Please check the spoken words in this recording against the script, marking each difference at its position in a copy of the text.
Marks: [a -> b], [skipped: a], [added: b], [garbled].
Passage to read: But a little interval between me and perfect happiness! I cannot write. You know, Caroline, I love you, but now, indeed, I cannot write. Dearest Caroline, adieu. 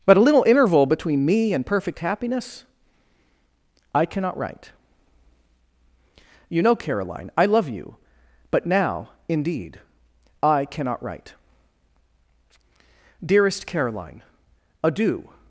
But a little interval between me and perfect happiness! I cannot write. You know, Caroline, I love you, but now, indeed, I cannot write. Dearest Caroline, adieu.